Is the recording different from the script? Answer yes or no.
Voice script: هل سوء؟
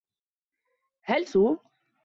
no